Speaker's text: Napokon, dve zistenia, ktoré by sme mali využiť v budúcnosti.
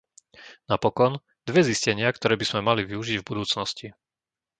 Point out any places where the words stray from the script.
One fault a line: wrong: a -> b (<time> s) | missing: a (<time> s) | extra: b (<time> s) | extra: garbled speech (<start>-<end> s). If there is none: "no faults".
no faults